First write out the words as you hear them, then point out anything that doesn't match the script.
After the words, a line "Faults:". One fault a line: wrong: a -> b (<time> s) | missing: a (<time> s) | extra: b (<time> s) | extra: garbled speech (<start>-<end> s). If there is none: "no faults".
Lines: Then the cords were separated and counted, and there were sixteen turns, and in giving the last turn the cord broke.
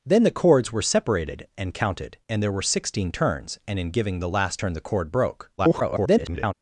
Then the cords were separated and counted, and there were sixteen turns, and in giving the last turn the cord broke. [garbled]
Faults:
extra: garbled speech (5.6-6.5 s)